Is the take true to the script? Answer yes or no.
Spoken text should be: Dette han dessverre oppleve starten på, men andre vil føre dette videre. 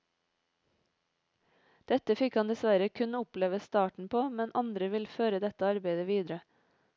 no